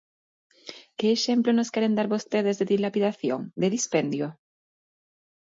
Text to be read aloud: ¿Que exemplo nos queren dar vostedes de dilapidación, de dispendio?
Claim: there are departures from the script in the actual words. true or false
false